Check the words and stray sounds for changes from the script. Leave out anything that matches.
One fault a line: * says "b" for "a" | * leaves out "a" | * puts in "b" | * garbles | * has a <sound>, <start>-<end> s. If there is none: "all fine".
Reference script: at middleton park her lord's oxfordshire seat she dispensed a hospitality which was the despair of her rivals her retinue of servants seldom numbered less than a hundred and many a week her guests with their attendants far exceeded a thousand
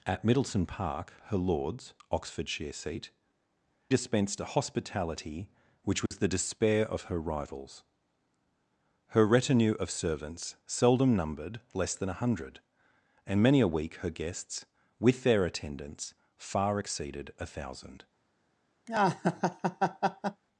* leaves out "she"
* has a dropout, 6.1-6.1 s
* has a laugh, 18.9-20.4 s